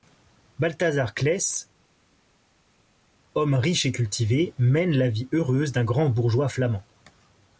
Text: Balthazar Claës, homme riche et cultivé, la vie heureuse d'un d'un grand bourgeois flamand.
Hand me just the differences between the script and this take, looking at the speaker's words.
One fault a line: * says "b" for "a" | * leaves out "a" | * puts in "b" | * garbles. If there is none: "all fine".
* puts in "mène"
* leaves out "d'un"